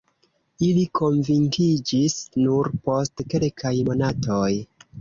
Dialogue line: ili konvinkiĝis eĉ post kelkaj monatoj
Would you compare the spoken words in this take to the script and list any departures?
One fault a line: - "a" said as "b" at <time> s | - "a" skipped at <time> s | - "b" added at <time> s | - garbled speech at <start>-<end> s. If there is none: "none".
- "eĉ" said as "nur" at 2.5 s